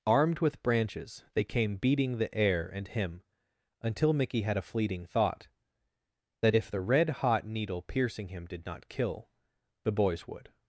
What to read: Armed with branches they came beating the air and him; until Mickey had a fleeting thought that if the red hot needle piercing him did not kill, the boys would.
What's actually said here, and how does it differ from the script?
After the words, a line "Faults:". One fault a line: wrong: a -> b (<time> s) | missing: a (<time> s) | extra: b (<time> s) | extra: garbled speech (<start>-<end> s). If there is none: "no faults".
Armed with branches they came beating the air and him; until Mickey had a fleeting thought that if the red hot needle piercing him did not kill, the boys would.
Faults:
no faults